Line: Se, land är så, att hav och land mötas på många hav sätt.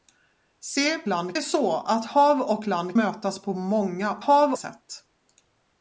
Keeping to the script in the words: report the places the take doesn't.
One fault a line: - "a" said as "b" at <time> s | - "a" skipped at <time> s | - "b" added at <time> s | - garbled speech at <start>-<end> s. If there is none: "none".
none